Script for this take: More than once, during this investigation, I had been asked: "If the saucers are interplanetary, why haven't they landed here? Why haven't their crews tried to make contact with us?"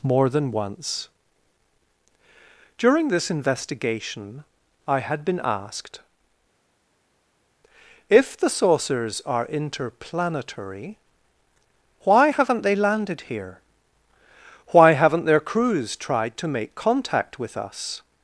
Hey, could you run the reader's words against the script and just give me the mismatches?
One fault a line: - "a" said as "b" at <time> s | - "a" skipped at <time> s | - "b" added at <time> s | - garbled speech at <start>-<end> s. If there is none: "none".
none